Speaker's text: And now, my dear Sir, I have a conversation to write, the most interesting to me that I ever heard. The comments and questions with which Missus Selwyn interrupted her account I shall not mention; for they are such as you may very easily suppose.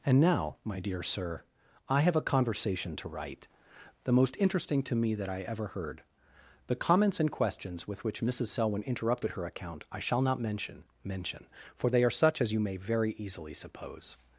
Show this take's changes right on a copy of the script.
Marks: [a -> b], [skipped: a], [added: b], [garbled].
And now, my dear Sir, I have a conversation to write, the most interesting to me that I ever heard. The comments and questions with which Missus Selwyn interrupted her account I shall not mention; [added: mention] for they are such as you may very easily suppose.